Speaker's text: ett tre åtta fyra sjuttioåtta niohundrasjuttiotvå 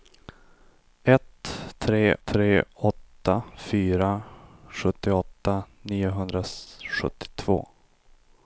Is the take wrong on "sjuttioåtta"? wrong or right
right